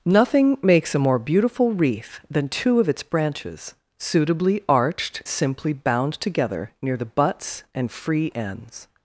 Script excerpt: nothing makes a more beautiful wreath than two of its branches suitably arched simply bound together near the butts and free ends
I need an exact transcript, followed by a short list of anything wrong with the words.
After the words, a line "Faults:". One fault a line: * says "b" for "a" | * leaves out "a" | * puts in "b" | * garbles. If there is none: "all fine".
nothing makes a more beautiful wreath than two of its branches suitably arched simply bound together near the butts and free ends
Faults:
all fine